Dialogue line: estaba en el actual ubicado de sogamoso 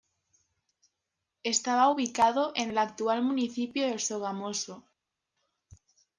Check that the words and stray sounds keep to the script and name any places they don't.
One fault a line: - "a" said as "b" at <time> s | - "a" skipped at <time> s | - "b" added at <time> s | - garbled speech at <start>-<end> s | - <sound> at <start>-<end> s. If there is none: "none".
- "ubicado" added at 1.9 s
- "ubicado" said as "municipio" at 3.2 s